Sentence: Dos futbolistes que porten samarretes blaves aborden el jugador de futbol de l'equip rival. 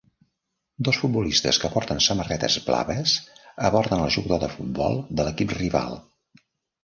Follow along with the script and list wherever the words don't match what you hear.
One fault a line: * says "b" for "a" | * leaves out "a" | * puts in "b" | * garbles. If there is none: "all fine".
all fine